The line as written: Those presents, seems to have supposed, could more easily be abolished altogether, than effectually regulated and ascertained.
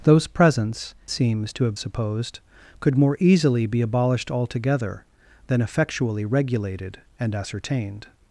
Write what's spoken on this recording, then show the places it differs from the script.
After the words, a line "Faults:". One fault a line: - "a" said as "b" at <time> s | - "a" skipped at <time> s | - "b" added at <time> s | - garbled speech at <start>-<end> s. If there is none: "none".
Those presents, seems to have supposed, could more easily be abolished altogether, than effectually regulated and ascertained.
Faults:
none